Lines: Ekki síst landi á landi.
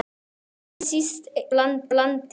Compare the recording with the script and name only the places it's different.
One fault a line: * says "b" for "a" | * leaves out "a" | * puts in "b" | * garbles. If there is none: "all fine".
all fine